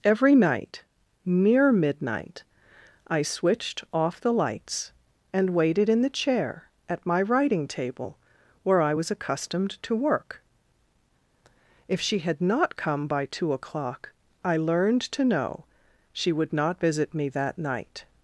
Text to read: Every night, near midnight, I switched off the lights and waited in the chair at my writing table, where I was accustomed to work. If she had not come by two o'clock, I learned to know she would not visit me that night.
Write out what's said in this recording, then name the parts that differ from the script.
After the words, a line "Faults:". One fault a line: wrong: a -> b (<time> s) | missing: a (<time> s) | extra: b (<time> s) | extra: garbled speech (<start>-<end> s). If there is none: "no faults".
Every night, near midnight, I switched off the lights and waited in the chair at my writing table, where I was accustomed to work. If she had not come by two o'clock, I learned to know she would not visit me that night.
Faults:
no faults